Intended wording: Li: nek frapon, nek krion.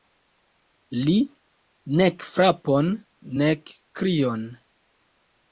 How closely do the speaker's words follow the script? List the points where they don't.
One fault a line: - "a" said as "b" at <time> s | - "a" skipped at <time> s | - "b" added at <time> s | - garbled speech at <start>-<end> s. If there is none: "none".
none